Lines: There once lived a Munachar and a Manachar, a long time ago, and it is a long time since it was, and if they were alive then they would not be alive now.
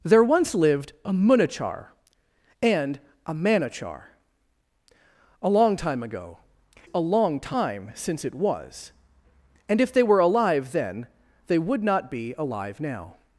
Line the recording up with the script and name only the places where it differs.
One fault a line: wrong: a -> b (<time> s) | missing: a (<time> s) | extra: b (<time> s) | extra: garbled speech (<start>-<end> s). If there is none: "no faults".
missing: and it is (6.4 s)